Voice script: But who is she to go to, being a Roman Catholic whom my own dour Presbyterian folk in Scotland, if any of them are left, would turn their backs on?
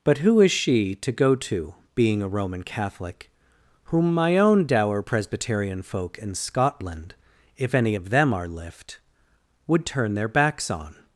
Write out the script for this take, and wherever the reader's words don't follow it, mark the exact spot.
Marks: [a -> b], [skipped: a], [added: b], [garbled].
But who is she to go to, being a Roman Catholic whom my own dour Presbyterian folk in Scotland, if any of them are [left, -> lift] would turn their backs on?